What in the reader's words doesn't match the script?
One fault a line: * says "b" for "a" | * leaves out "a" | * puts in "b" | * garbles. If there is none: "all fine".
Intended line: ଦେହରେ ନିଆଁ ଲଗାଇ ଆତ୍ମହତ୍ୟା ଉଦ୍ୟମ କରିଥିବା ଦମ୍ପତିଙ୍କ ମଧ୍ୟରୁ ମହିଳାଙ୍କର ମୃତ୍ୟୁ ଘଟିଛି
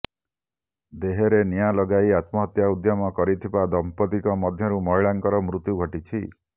all fine